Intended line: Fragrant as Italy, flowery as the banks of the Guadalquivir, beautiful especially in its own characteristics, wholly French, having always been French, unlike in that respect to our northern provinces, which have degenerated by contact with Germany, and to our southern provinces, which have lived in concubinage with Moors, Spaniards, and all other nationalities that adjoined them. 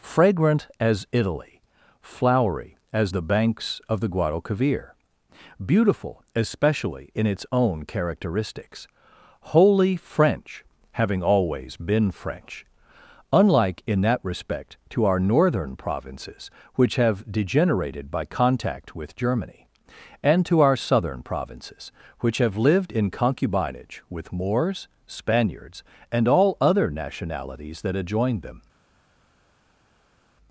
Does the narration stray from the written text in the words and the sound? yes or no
no